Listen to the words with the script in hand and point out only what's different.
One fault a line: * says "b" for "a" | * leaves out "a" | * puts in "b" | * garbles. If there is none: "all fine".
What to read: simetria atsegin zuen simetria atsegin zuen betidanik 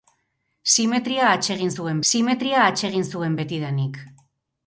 all fine